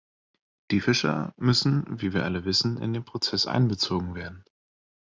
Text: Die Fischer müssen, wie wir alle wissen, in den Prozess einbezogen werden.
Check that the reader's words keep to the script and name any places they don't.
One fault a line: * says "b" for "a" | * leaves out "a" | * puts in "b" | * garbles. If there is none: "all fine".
all fine